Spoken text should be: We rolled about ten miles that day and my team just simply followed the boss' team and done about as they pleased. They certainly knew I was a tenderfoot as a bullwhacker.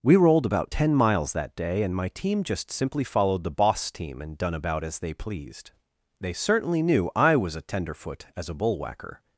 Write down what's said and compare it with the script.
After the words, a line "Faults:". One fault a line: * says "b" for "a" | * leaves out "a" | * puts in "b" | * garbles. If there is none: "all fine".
We rolled about ten miles that day and my team just simply followed the boss' team and done about as they pleased. They certainly knew I was a tenderfoot as a bullwhacker.
Faults:
all fine